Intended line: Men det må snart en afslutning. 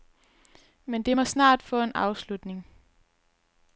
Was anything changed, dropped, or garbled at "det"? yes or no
no